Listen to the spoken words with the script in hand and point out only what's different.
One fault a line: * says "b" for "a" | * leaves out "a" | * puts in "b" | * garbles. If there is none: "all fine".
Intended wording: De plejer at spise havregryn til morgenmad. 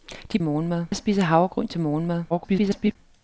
* says "morgenmad" for "plejer"
* garbles